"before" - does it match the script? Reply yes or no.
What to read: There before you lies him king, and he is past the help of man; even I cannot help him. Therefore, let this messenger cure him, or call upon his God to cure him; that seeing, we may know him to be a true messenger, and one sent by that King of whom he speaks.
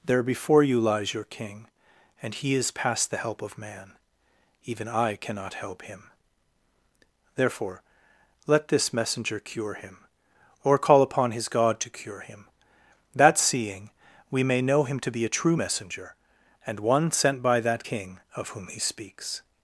yes